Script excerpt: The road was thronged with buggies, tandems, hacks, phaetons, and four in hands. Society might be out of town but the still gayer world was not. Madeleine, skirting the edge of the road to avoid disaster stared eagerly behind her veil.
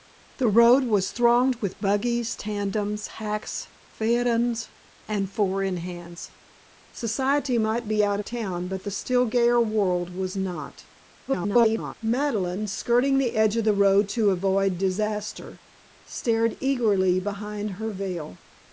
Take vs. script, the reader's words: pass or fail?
fail